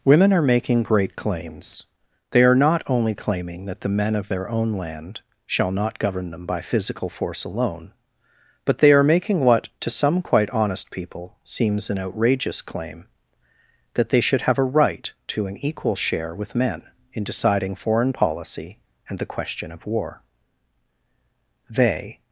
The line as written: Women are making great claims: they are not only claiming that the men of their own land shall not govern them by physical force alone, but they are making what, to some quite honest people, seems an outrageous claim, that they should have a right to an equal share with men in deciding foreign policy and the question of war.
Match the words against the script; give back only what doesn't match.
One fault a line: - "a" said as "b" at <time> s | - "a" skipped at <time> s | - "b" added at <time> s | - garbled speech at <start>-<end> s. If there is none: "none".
- "They" added at 21.7 s